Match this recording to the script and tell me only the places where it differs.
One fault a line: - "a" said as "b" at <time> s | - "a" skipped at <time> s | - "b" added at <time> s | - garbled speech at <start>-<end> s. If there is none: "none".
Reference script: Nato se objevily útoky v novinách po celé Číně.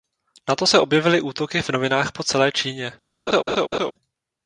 none